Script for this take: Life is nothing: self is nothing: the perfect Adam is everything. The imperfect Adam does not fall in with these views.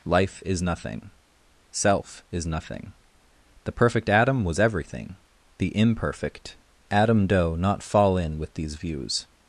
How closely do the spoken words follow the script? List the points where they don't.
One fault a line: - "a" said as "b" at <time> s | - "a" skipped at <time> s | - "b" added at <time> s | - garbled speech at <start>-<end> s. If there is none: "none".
- "is" said as "was" at 4.4 s
- "does" said as "doe" at 7.3 s